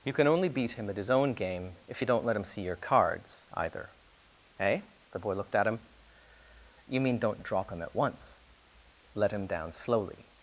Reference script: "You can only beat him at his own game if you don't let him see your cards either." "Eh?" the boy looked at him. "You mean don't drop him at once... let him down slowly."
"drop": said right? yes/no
yes